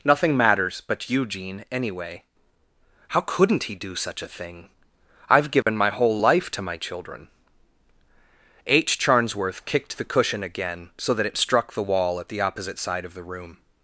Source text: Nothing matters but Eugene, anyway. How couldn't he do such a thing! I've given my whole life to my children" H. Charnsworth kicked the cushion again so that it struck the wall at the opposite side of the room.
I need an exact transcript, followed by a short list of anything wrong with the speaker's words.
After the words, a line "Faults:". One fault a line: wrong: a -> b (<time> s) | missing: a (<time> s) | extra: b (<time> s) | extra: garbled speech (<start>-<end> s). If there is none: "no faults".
Nothing matters but Eugene, anyway. How couldn't he do such a thing! I've given my whole life to my children" H. Charnsworth kicked the cushion again so that it struck the wall at the opposite side of the room.
Faults:
no faults